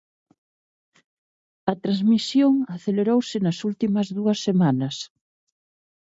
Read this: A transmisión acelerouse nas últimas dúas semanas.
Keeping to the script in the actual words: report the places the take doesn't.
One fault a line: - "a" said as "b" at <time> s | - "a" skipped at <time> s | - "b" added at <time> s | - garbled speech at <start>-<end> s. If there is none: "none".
none